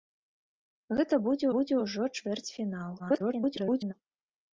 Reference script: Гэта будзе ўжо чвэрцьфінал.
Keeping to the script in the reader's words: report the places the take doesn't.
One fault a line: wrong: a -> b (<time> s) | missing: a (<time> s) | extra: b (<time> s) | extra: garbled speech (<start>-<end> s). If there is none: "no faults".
extra: будзе (1.5 s)
extra: garbled speech (3.0-3.9 s)